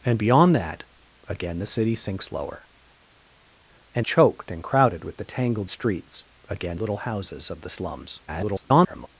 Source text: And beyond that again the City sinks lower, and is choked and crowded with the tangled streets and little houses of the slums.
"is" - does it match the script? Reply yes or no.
no